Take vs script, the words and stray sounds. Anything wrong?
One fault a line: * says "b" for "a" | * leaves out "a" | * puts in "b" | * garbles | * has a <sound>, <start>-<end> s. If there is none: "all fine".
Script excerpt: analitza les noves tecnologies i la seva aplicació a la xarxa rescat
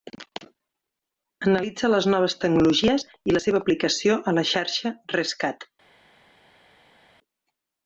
all fine